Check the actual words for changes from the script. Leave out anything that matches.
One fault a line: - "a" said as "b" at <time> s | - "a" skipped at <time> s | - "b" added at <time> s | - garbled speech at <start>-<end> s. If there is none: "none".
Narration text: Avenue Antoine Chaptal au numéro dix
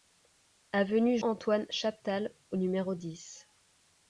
none